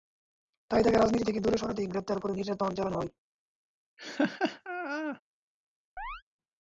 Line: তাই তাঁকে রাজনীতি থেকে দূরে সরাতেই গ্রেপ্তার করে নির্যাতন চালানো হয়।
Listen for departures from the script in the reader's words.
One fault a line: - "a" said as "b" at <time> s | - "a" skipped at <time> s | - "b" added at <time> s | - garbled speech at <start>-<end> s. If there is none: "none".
none